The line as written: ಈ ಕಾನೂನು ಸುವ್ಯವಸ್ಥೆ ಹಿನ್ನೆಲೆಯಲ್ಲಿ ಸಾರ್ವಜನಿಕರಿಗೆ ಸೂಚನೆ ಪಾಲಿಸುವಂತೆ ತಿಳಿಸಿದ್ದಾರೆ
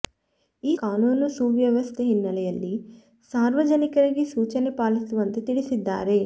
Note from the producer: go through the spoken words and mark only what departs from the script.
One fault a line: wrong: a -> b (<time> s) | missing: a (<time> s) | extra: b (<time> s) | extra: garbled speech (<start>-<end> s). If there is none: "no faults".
no faults